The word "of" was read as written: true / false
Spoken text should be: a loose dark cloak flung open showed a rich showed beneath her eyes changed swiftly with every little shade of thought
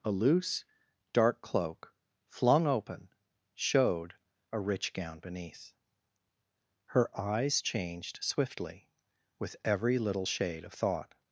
true